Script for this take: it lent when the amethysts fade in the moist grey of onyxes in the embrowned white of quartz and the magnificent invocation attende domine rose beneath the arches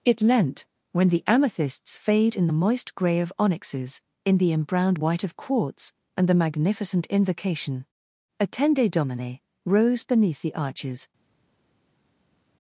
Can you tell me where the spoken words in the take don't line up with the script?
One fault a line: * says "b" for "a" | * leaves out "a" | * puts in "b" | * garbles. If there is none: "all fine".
all fine